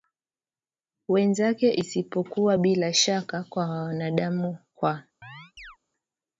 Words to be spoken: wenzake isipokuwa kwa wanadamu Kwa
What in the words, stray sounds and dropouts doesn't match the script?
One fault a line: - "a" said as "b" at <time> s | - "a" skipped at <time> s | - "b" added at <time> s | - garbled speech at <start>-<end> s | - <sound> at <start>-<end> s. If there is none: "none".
- "bila shaka" added at 2.6 s
- chirp at 5.2-5.8 s